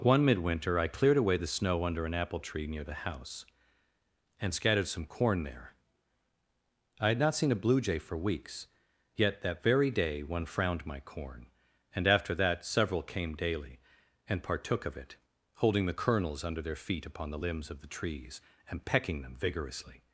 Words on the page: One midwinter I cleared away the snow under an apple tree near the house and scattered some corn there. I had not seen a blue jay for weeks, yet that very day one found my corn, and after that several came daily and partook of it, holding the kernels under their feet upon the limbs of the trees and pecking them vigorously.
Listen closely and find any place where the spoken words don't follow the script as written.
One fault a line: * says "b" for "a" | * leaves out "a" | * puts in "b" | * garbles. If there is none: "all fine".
* says "frowned" for "found"